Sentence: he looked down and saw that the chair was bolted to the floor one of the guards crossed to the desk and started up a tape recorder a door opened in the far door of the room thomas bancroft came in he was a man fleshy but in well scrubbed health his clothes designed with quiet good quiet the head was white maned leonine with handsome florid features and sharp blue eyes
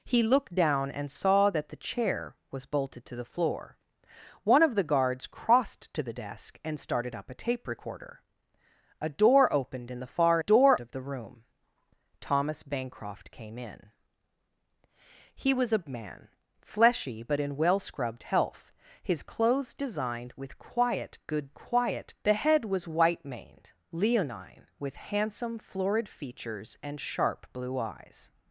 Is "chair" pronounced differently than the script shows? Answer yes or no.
no